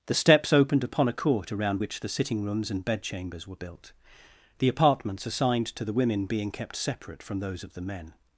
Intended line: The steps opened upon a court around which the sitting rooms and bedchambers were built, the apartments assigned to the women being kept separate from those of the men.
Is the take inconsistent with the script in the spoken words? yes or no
no